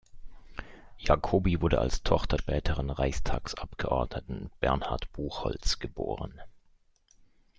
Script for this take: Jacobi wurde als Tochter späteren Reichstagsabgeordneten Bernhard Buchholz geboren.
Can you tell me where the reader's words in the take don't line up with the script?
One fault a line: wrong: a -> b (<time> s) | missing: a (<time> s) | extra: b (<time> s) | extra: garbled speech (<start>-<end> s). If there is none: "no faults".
no faults